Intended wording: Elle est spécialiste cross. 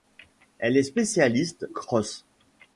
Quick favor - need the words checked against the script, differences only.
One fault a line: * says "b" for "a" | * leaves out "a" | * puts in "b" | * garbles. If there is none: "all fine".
all fine